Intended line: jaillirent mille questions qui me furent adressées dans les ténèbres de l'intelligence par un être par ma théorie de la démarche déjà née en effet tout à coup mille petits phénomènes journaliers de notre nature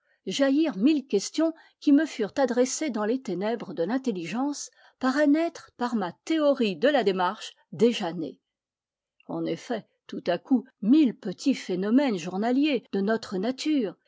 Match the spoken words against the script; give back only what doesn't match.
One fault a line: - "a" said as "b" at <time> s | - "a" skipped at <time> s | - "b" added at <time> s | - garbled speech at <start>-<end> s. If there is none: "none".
none